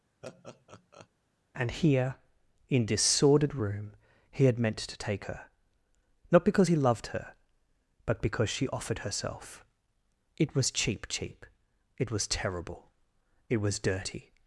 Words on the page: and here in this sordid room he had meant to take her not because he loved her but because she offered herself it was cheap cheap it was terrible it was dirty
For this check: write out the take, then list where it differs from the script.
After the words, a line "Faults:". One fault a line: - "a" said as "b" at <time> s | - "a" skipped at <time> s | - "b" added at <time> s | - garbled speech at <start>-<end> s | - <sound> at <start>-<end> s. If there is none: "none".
and here in this sordid room he had meant to take her not because he loved her but because she offered herself it was cheap cheap it was terrible it was dirty
Faults:
- laugh at 0.2-1.1 s